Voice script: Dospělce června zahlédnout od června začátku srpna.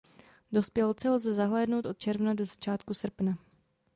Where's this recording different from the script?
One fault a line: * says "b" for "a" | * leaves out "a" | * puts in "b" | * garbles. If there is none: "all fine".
* says "lze" for "června"
* puts in "do"